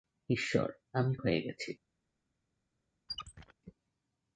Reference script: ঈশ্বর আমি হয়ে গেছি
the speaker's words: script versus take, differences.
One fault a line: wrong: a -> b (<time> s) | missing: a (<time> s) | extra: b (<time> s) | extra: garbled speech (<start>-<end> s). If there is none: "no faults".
no faults